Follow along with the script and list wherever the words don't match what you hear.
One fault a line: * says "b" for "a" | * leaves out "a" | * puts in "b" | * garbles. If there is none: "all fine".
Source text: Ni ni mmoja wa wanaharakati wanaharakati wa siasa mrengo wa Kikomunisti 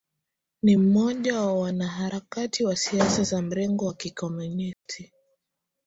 * leaves out "ni"
* leaves out "wanaharakati"
* puts in "za"